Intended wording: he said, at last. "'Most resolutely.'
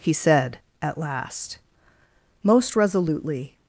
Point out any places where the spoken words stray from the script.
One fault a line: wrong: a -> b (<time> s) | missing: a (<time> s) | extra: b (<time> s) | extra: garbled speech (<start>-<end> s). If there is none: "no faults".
no faults